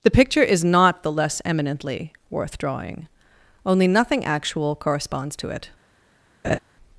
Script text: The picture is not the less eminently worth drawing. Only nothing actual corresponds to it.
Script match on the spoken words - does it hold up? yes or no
yes